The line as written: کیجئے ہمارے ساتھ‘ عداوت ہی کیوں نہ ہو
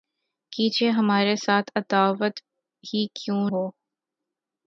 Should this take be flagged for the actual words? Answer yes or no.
yes